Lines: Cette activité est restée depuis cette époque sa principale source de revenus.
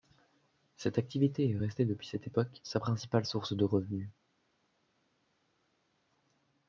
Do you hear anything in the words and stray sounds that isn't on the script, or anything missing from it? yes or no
no